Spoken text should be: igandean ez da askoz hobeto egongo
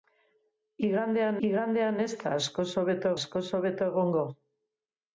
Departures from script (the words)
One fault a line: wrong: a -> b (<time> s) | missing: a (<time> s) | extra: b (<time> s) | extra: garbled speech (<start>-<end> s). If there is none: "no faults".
extra: igandean (1.5 s)
extra: askoz hobeto (3.2 s)